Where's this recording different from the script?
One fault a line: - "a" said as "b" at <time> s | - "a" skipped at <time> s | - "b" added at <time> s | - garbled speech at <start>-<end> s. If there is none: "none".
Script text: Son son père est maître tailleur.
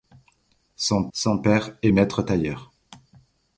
none